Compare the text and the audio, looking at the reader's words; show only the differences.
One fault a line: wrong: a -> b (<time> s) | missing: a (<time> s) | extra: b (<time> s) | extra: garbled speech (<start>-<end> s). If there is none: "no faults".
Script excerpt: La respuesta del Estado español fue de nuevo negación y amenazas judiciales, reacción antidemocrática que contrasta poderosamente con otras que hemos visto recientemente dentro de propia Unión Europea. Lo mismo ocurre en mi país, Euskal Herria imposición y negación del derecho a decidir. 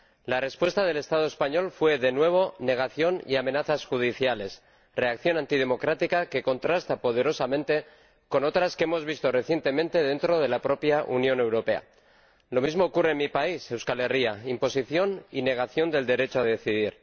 extra: la (10.5 s)